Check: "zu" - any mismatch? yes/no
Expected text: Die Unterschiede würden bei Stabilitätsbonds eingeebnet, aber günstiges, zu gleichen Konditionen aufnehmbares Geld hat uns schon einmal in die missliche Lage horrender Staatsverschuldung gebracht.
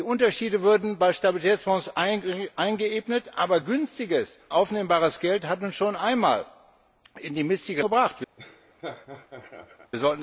yes